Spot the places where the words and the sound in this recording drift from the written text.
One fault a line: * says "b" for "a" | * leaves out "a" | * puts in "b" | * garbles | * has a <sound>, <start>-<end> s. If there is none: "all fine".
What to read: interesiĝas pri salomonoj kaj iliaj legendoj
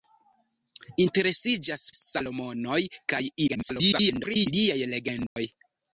* leaves out "pri"
* garbles
* has a dropout, 5.3-5.4 s